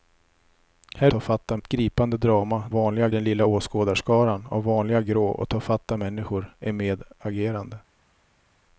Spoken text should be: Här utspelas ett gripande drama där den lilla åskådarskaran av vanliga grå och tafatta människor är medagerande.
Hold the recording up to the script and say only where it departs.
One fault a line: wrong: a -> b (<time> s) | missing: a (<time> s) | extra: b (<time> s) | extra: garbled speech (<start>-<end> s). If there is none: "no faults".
wrong: utspelas -> tafatta (1.1 s)
wrong: där -> vanliga (2.7 s)